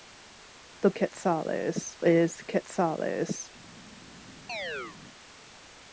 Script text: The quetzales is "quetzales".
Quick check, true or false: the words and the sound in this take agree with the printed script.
false